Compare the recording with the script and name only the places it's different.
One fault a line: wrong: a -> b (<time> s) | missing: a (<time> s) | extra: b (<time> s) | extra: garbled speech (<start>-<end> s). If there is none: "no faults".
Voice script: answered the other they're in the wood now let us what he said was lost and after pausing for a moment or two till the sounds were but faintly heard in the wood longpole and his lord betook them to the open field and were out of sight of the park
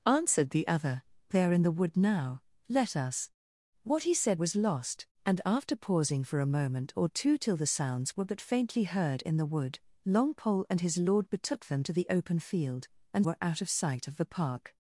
no faults